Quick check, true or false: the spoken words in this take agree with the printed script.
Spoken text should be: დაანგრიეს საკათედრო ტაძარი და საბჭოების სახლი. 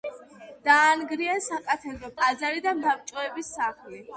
true